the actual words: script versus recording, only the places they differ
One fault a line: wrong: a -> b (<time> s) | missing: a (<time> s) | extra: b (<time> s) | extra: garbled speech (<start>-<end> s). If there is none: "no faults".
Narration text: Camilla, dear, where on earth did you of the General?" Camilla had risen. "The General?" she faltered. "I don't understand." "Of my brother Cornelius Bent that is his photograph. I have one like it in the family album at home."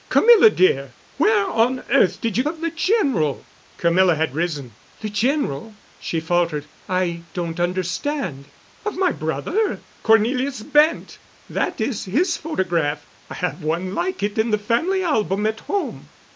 no faults